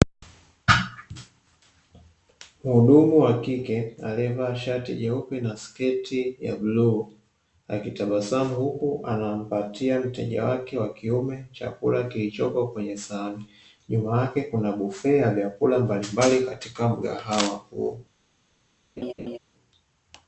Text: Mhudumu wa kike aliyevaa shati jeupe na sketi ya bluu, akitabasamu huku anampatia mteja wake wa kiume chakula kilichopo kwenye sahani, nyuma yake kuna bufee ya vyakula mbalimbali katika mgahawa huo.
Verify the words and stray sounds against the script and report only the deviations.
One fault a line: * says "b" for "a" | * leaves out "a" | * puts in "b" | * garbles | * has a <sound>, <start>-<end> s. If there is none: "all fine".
* has a laugh, 19.0-19.4 s